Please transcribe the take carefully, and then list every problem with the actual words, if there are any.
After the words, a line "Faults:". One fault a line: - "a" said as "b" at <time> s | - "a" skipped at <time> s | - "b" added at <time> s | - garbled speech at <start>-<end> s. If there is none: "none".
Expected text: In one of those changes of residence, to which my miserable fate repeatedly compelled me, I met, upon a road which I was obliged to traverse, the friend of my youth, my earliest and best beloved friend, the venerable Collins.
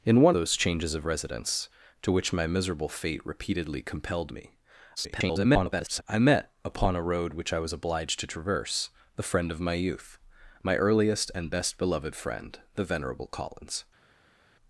In one those changes of residence, to which my miserable fate repeatedly compelled me, [garbled] I met, upon a road which I was obliged to traverse, the friend of my youth, my earliest and best beloved friend, the venerable Collins.
Faults:
- "of" skipped at 0.3 s
- garbled speech at 5.0-6.0 s